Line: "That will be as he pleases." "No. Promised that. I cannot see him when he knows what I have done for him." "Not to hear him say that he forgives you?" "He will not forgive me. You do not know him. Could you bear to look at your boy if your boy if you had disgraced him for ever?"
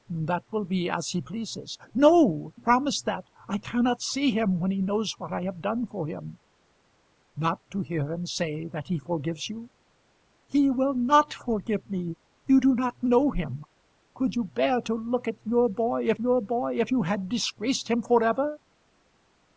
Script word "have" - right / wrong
right